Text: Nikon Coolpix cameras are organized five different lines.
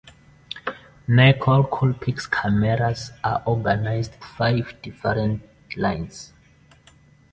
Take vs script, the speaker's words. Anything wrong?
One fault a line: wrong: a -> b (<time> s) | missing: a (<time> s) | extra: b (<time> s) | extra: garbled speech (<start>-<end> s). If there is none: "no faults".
no faults